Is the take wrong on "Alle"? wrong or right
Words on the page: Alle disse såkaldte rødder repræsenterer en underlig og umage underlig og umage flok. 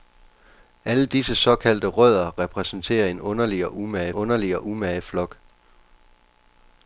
right